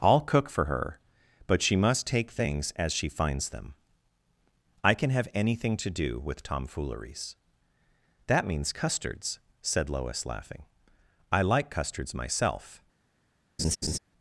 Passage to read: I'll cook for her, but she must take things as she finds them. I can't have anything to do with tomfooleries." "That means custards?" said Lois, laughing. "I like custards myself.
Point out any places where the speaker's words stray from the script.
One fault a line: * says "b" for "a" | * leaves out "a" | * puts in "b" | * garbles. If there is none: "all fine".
* says "can" for "can't"